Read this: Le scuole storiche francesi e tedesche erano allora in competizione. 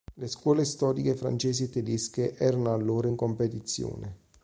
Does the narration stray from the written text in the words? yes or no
no